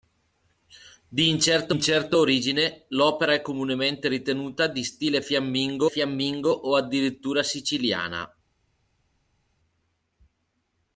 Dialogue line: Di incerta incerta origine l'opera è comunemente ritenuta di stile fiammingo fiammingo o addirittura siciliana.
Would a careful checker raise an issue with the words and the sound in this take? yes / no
no